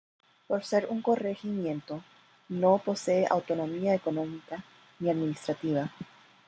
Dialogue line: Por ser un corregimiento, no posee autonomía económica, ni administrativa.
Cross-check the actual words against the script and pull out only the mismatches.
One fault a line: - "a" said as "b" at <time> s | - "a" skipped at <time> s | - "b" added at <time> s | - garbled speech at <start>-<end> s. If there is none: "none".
none